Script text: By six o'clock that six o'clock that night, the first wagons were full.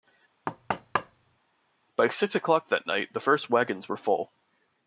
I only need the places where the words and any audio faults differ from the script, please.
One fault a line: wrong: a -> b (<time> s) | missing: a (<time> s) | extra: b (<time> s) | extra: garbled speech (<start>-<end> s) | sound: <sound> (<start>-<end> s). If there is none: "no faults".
sound: thud (0.5-1.4 s)
missing: six o'clock that (2.9 s)